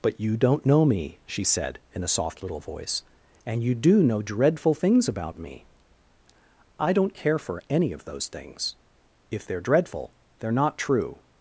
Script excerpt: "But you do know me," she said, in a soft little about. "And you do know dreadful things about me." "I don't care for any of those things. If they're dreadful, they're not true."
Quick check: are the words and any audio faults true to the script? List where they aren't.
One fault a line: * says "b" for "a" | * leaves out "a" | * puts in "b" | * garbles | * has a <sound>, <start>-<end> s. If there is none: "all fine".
* says "don't" for "do"
* says "voice" for "about"